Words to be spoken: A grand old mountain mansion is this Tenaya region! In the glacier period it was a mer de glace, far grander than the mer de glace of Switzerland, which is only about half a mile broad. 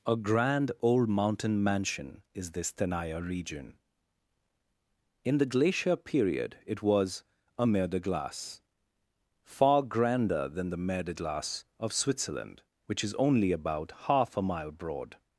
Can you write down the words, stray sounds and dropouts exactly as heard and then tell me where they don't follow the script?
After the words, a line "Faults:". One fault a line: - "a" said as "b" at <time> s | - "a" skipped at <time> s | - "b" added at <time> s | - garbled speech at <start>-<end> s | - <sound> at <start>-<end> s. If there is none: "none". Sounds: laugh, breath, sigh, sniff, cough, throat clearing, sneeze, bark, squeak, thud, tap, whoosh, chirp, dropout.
A grand old mountain mansion is this Tenaya region! In the glacier period it was a mer de glace, far grander than the mer de glace of Switzerland, which is only about half a mile broad.
Faults:
none